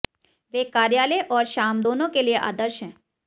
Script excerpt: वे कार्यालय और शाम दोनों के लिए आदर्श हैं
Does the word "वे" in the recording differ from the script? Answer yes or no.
no